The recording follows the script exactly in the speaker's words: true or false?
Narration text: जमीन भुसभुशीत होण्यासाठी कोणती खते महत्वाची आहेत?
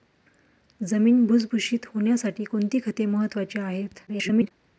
false